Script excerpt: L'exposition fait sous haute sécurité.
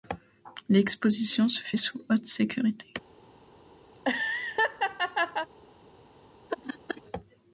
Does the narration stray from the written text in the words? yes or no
yes